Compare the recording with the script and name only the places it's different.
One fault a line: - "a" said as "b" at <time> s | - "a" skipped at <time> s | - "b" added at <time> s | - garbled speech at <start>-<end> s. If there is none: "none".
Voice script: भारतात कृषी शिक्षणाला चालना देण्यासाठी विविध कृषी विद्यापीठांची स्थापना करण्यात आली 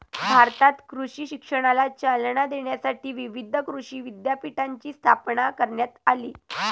none